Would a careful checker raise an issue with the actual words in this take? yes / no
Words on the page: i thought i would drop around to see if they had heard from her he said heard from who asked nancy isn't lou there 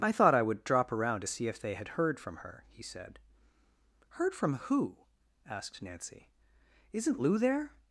no